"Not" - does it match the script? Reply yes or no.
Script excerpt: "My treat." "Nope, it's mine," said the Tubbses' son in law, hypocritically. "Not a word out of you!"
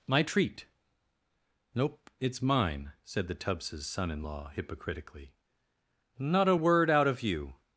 yes